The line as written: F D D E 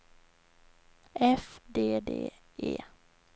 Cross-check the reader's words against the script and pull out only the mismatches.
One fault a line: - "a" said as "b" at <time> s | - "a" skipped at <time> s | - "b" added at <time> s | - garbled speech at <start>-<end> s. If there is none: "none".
none